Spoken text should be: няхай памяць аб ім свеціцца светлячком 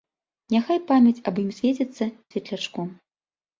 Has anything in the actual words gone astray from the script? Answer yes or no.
no